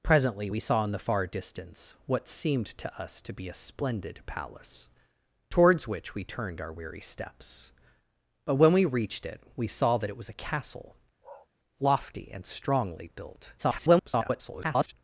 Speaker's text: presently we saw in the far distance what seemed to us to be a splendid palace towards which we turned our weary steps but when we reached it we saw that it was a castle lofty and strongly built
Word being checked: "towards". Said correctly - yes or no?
yes